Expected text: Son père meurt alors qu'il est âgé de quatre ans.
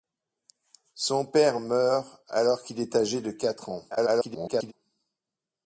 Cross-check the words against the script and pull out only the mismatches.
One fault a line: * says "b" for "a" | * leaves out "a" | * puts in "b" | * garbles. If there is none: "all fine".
* garbles